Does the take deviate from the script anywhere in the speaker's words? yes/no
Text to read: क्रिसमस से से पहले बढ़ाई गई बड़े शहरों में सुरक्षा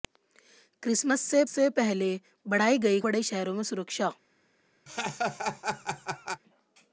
no